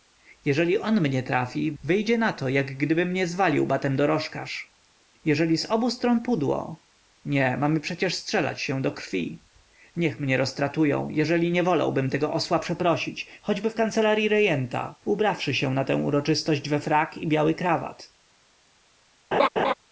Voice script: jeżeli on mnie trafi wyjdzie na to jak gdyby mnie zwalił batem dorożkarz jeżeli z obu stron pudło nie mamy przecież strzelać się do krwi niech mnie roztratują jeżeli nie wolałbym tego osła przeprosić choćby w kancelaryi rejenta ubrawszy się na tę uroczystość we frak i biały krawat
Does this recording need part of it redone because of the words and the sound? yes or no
yes